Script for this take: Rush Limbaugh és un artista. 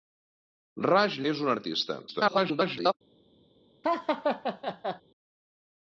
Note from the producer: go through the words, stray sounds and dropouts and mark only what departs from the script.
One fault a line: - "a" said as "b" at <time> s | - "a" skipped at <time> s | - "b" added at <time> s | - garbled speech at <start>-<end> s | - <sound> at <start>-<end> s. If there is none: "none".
- "Limbaugh" skipped at 1.2 s
- garbled speech at 2.1-2.9 s
- laugh at 3.8-5.0 s